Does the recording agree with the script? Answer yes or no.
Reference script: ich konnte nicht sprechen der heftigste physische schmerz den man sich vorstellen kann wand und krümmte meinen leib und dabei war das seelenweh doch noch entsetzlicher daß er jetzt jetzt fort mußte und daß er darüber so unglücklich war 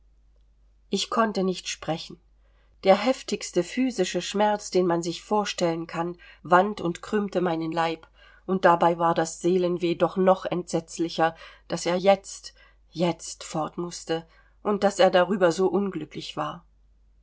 yes